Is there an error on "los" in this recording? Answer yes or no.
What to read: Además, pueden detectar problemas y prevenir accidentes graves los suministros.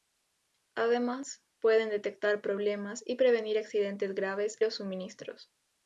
no